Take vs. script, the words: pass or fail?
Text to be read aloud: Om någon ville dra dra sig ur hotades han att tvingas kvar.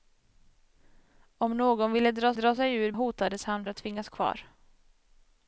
pass